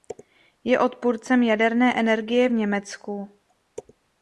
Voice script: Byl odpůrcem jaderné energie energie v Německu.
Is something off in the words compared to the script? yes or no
yes